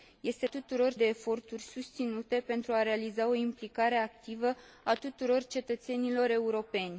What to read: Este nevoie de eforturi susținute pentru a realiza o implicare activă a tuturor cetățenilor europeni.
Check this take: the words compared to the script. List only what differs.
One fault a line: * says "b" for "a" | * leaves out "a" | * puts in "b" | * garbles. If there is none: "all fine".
* says "tuturor" for "nevoie"